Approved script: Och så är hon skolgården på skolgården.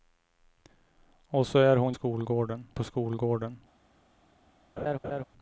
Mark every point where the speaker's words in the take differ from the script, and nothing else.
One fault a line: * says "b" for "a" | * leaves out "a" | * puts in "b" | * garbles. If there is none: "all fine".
all fine